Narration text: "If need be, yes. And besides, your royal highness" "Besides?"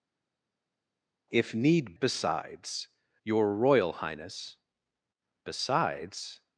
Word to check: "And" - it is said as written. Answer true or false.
false